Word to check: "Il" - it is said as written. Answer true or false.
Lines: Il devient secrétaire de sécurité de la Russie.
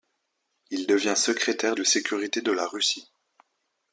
true